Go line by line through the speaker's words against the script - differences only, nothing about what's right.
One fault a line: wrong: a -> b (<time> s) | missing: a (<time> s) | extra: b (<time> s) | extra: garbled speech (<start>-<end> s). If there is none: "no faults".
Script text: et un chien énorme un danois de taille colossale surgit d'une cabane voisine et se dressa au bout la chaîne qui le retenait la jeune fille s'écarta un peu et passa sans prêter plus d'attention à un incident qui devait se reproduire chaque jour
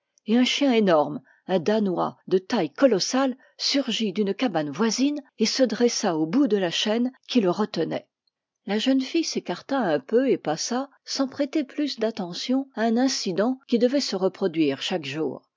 extra: de (6.5 s)